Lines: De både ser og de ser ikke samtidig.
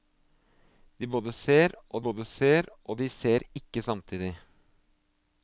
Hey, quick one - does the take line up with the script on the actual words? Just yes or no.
no